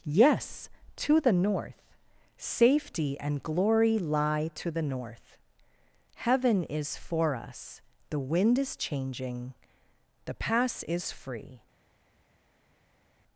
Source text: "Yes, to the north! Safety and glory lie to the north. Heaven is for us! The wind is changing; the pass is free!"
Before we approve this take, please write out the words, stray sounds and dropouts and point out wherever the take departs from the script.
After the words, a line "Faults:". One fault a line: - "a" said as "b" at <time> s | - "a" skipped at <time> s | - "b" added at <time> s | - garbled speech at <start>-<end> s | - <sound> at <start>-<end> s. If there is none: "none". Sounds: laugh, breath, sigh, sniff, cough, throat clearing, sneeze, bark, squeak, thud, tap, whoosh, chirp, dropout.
"Yes, to the north! Safety and glory lie to the north. Heaven is for us! The wind is changing; the pass is free!"
Faults:
none